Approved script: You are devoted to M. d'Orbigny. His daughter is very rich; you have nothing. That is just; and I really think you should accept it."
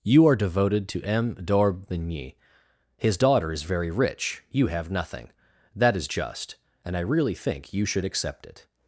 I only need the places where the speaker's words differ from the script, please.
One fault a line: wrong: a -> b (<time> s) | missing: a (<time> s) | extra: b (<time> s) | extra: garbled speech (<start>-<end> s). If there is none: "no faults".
no faults